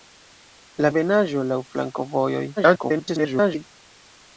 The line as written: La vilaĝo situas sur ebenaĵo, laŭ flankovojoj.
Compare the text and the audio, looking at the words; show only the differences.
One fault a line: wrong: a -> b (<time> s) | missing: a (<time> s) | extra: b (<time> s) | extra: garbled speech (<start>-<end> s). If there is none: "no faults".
missing: vilaĝo situas sur (0.9 s)
extra: garbled speech (2.6-3.7 s)